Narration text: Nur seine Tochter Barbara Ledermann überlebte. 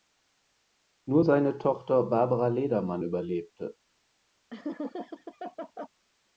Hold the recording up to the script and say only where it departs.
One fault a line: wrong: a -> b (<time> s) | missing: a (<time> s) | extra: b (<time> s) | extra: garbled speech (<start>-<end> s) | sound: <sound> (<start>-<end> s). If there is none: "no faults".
sound: laugh (4.5-5.9 s)